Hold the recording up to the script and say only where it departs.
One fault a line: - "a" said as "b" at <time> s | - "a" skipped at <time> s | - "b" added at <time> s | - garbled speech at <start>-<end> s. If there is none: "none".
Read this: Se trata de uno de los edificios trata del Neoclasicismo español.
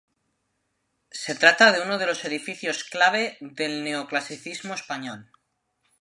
- "trata" said as "clave" at 2.8 s